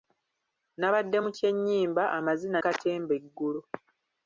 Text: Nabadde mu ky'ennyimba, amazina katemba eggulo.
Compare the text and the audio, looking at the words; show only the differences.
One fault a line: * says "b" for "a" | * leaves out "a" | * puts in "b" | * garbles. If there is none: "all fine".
all fine